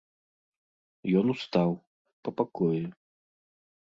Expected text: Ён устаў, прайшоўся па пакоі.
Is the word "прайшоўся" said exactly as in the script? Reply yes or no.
no